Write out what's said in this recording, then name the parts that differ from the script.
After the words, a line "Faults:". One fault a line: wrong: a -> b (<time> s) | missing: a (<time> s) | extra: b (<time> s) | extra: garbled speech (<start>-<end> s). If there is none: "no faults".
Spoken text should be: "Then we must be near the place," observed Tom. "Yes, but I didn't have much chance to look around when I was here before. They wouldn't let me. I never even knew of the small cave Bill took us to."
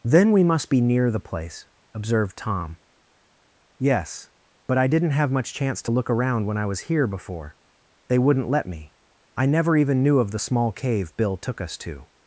"Then we must be near the place," observed Tom. "Yes, but I didn't have much chance to look around when I was here before. They wouldn't let me. I never even knew of the small cave Bill took us to."
Faults:
no faults